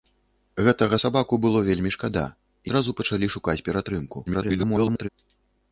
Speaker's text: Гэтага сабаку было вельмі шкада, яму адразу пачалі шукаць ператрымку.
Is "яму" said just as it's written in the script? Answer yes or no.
no